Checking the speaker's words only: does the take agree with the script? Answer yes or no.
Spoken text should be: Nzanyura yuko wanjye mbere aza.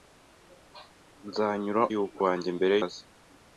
yes